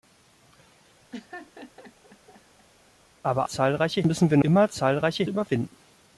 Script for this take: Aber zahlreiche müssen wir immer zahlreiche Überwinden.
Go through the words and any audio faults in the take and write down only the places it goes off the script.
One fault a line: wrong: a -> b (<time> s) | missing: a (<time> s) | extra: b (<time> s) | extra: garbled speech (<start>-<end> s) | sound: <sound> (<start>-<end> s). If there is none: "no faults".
sound: laugh (1.1-2.7 s)